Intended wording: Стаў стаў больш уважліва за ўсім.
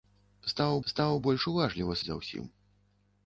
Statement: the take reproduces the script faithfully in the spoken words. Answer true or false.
true